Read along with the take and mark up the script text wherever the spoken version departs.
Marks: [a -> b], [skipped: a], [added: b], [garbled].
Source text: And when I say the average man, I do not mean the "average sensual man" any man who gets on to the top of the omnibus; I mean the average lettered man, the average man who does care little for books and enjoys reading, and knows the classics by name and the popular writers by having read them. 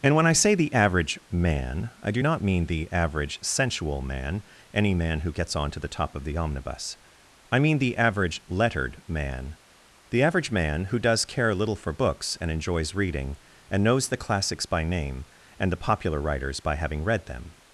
And when I say the average man, I do not mean the "average sensual man" any man who gets on to the top of the omnibus; I mean the average lettered man, the average man who does care little for books and enjoys reading, and knows the classics by name and the popular writers by having read them.